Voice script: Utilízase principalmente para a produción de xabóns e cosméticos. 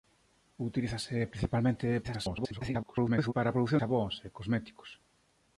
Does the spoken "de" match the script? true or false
false